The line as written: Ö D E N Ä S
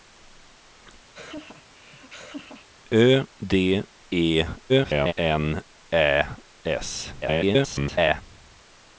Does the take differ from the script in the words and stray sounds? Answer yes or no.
yes